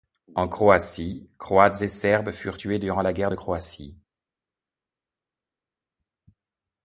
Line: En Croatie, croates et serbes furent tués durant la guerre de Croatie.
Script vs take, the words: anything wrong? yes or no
no